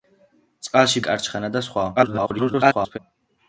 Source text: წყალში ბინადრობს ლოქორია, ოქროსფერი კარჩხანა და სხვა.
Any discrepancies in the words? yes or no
yes